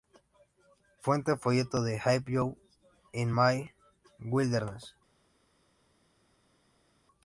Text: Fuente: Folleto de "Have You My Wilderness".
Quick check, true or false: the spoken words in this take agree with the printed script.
false